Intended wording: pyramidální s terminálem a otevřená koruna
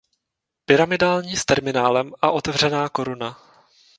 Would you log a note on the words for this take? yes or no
no